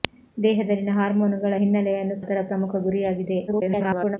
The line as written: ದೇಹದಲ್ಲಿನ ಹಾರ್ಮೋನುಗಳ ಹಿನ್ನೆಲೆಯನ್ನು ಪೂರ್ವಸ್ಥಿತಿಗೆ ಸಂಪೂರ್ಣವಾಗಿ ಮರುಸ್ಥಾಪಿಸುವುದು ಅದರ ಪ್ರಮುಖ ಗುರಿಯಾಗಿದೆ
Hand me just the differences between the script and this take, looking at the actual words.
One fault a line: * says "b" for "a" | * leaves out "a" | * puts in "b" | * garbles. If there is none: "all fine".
* leaves out "ಪೂರ್ವಸ್ಥಿತಿಗೆ ಸಂಪೂರ್ಣವಾಗಿ ಮರುಸ್ಥಾಪಿಸುವುದು"
* garbles